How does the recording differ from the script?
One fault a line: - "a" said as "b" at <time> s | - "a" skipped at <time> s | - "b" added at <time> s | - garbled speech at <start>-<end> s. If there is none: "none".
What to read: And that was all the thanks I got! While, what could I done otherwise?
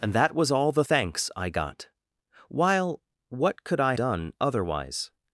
none